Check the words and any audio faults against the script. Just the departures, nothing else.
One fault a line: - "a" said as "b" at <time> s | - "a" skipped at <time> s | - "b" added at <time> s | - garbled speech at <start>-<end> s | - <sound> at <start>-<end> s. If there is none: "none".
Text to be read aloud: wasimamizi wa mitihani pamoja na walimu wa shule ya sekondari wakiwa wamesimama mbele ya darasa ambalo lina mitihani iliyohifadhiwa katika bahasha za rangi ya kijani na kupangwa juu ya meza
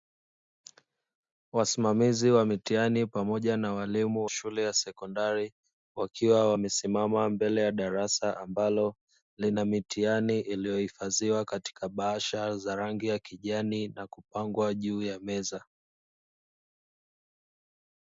- "wa" skipped at 4.2 s